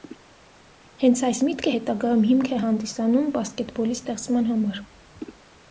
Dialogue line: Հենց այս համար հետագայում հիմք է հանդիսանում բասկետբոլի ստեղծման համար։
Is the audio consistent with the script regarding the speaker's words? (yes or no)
no